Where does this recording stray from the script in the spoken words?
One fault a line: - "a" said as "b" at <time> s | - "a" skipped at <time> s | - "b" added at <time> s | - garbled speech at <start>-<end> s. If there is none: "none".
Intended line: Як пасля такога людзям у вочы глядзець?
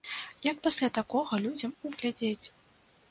- "вочы" skipped at 1.9 s